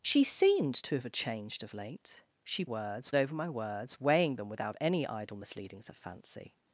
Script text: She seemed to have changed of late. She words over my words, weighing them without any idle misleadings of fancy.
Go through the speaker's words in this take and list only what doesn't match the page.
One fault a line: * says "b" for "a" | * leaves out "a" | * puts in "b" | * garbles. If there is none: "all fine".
all fine